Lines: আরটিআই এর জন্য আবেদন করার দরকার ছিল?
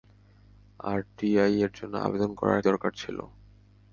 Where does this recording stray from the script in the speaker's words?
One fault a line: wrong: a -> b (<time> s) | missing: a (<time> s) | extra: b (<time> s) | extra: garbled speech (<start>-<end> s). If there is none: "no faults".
no faults